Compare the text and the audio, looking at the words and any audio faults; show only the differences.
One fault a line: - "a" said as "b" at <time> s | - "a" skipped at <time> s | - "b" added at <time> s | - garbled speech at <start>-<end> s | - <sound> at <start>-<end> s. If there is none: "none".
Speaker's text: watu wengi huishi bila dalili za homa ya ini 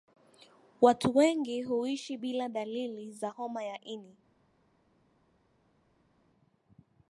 none